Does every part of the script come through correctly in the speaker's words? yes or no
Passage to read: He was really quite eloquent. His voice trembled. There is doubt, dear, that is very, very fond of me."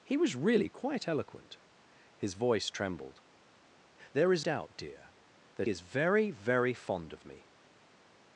yes